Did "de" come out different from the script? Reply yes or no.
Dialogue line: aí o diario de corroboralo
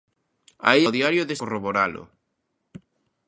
no